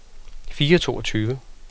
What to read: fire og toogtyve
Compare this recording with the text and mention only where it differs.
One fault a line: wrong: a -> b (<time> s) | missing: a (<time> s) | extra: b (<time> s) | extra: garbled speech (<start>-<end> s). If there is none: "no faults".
no faults